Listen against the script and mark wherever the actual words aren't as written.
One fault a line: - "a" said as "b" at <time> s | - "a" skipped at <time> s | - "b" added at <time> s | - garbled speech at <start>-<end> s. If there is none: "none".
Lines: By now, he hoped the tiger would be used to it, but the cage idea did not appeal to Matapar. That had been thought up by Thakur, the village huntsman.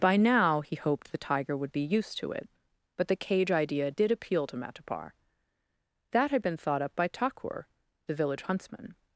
- "not" skipped at 4.1 s